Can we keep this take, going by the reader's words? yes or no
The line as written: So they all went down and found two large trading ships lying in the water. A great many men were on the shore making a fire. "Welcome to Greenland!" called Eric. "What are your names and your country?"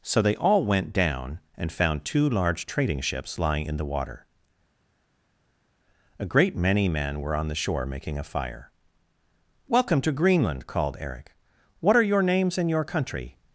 yes